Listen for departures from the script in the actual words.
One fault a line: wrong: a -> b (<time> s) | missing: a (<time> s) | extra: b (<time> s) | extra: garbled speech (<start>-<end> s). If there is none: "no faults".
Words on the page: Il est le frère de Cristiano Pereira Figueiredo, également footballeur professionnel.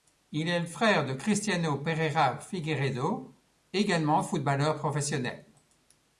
no faults